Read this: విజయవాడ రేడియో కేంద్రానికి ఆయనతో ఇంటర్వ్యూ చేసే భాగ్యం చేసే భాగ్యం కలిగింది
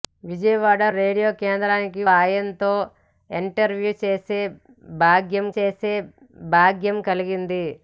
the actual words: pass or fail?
pass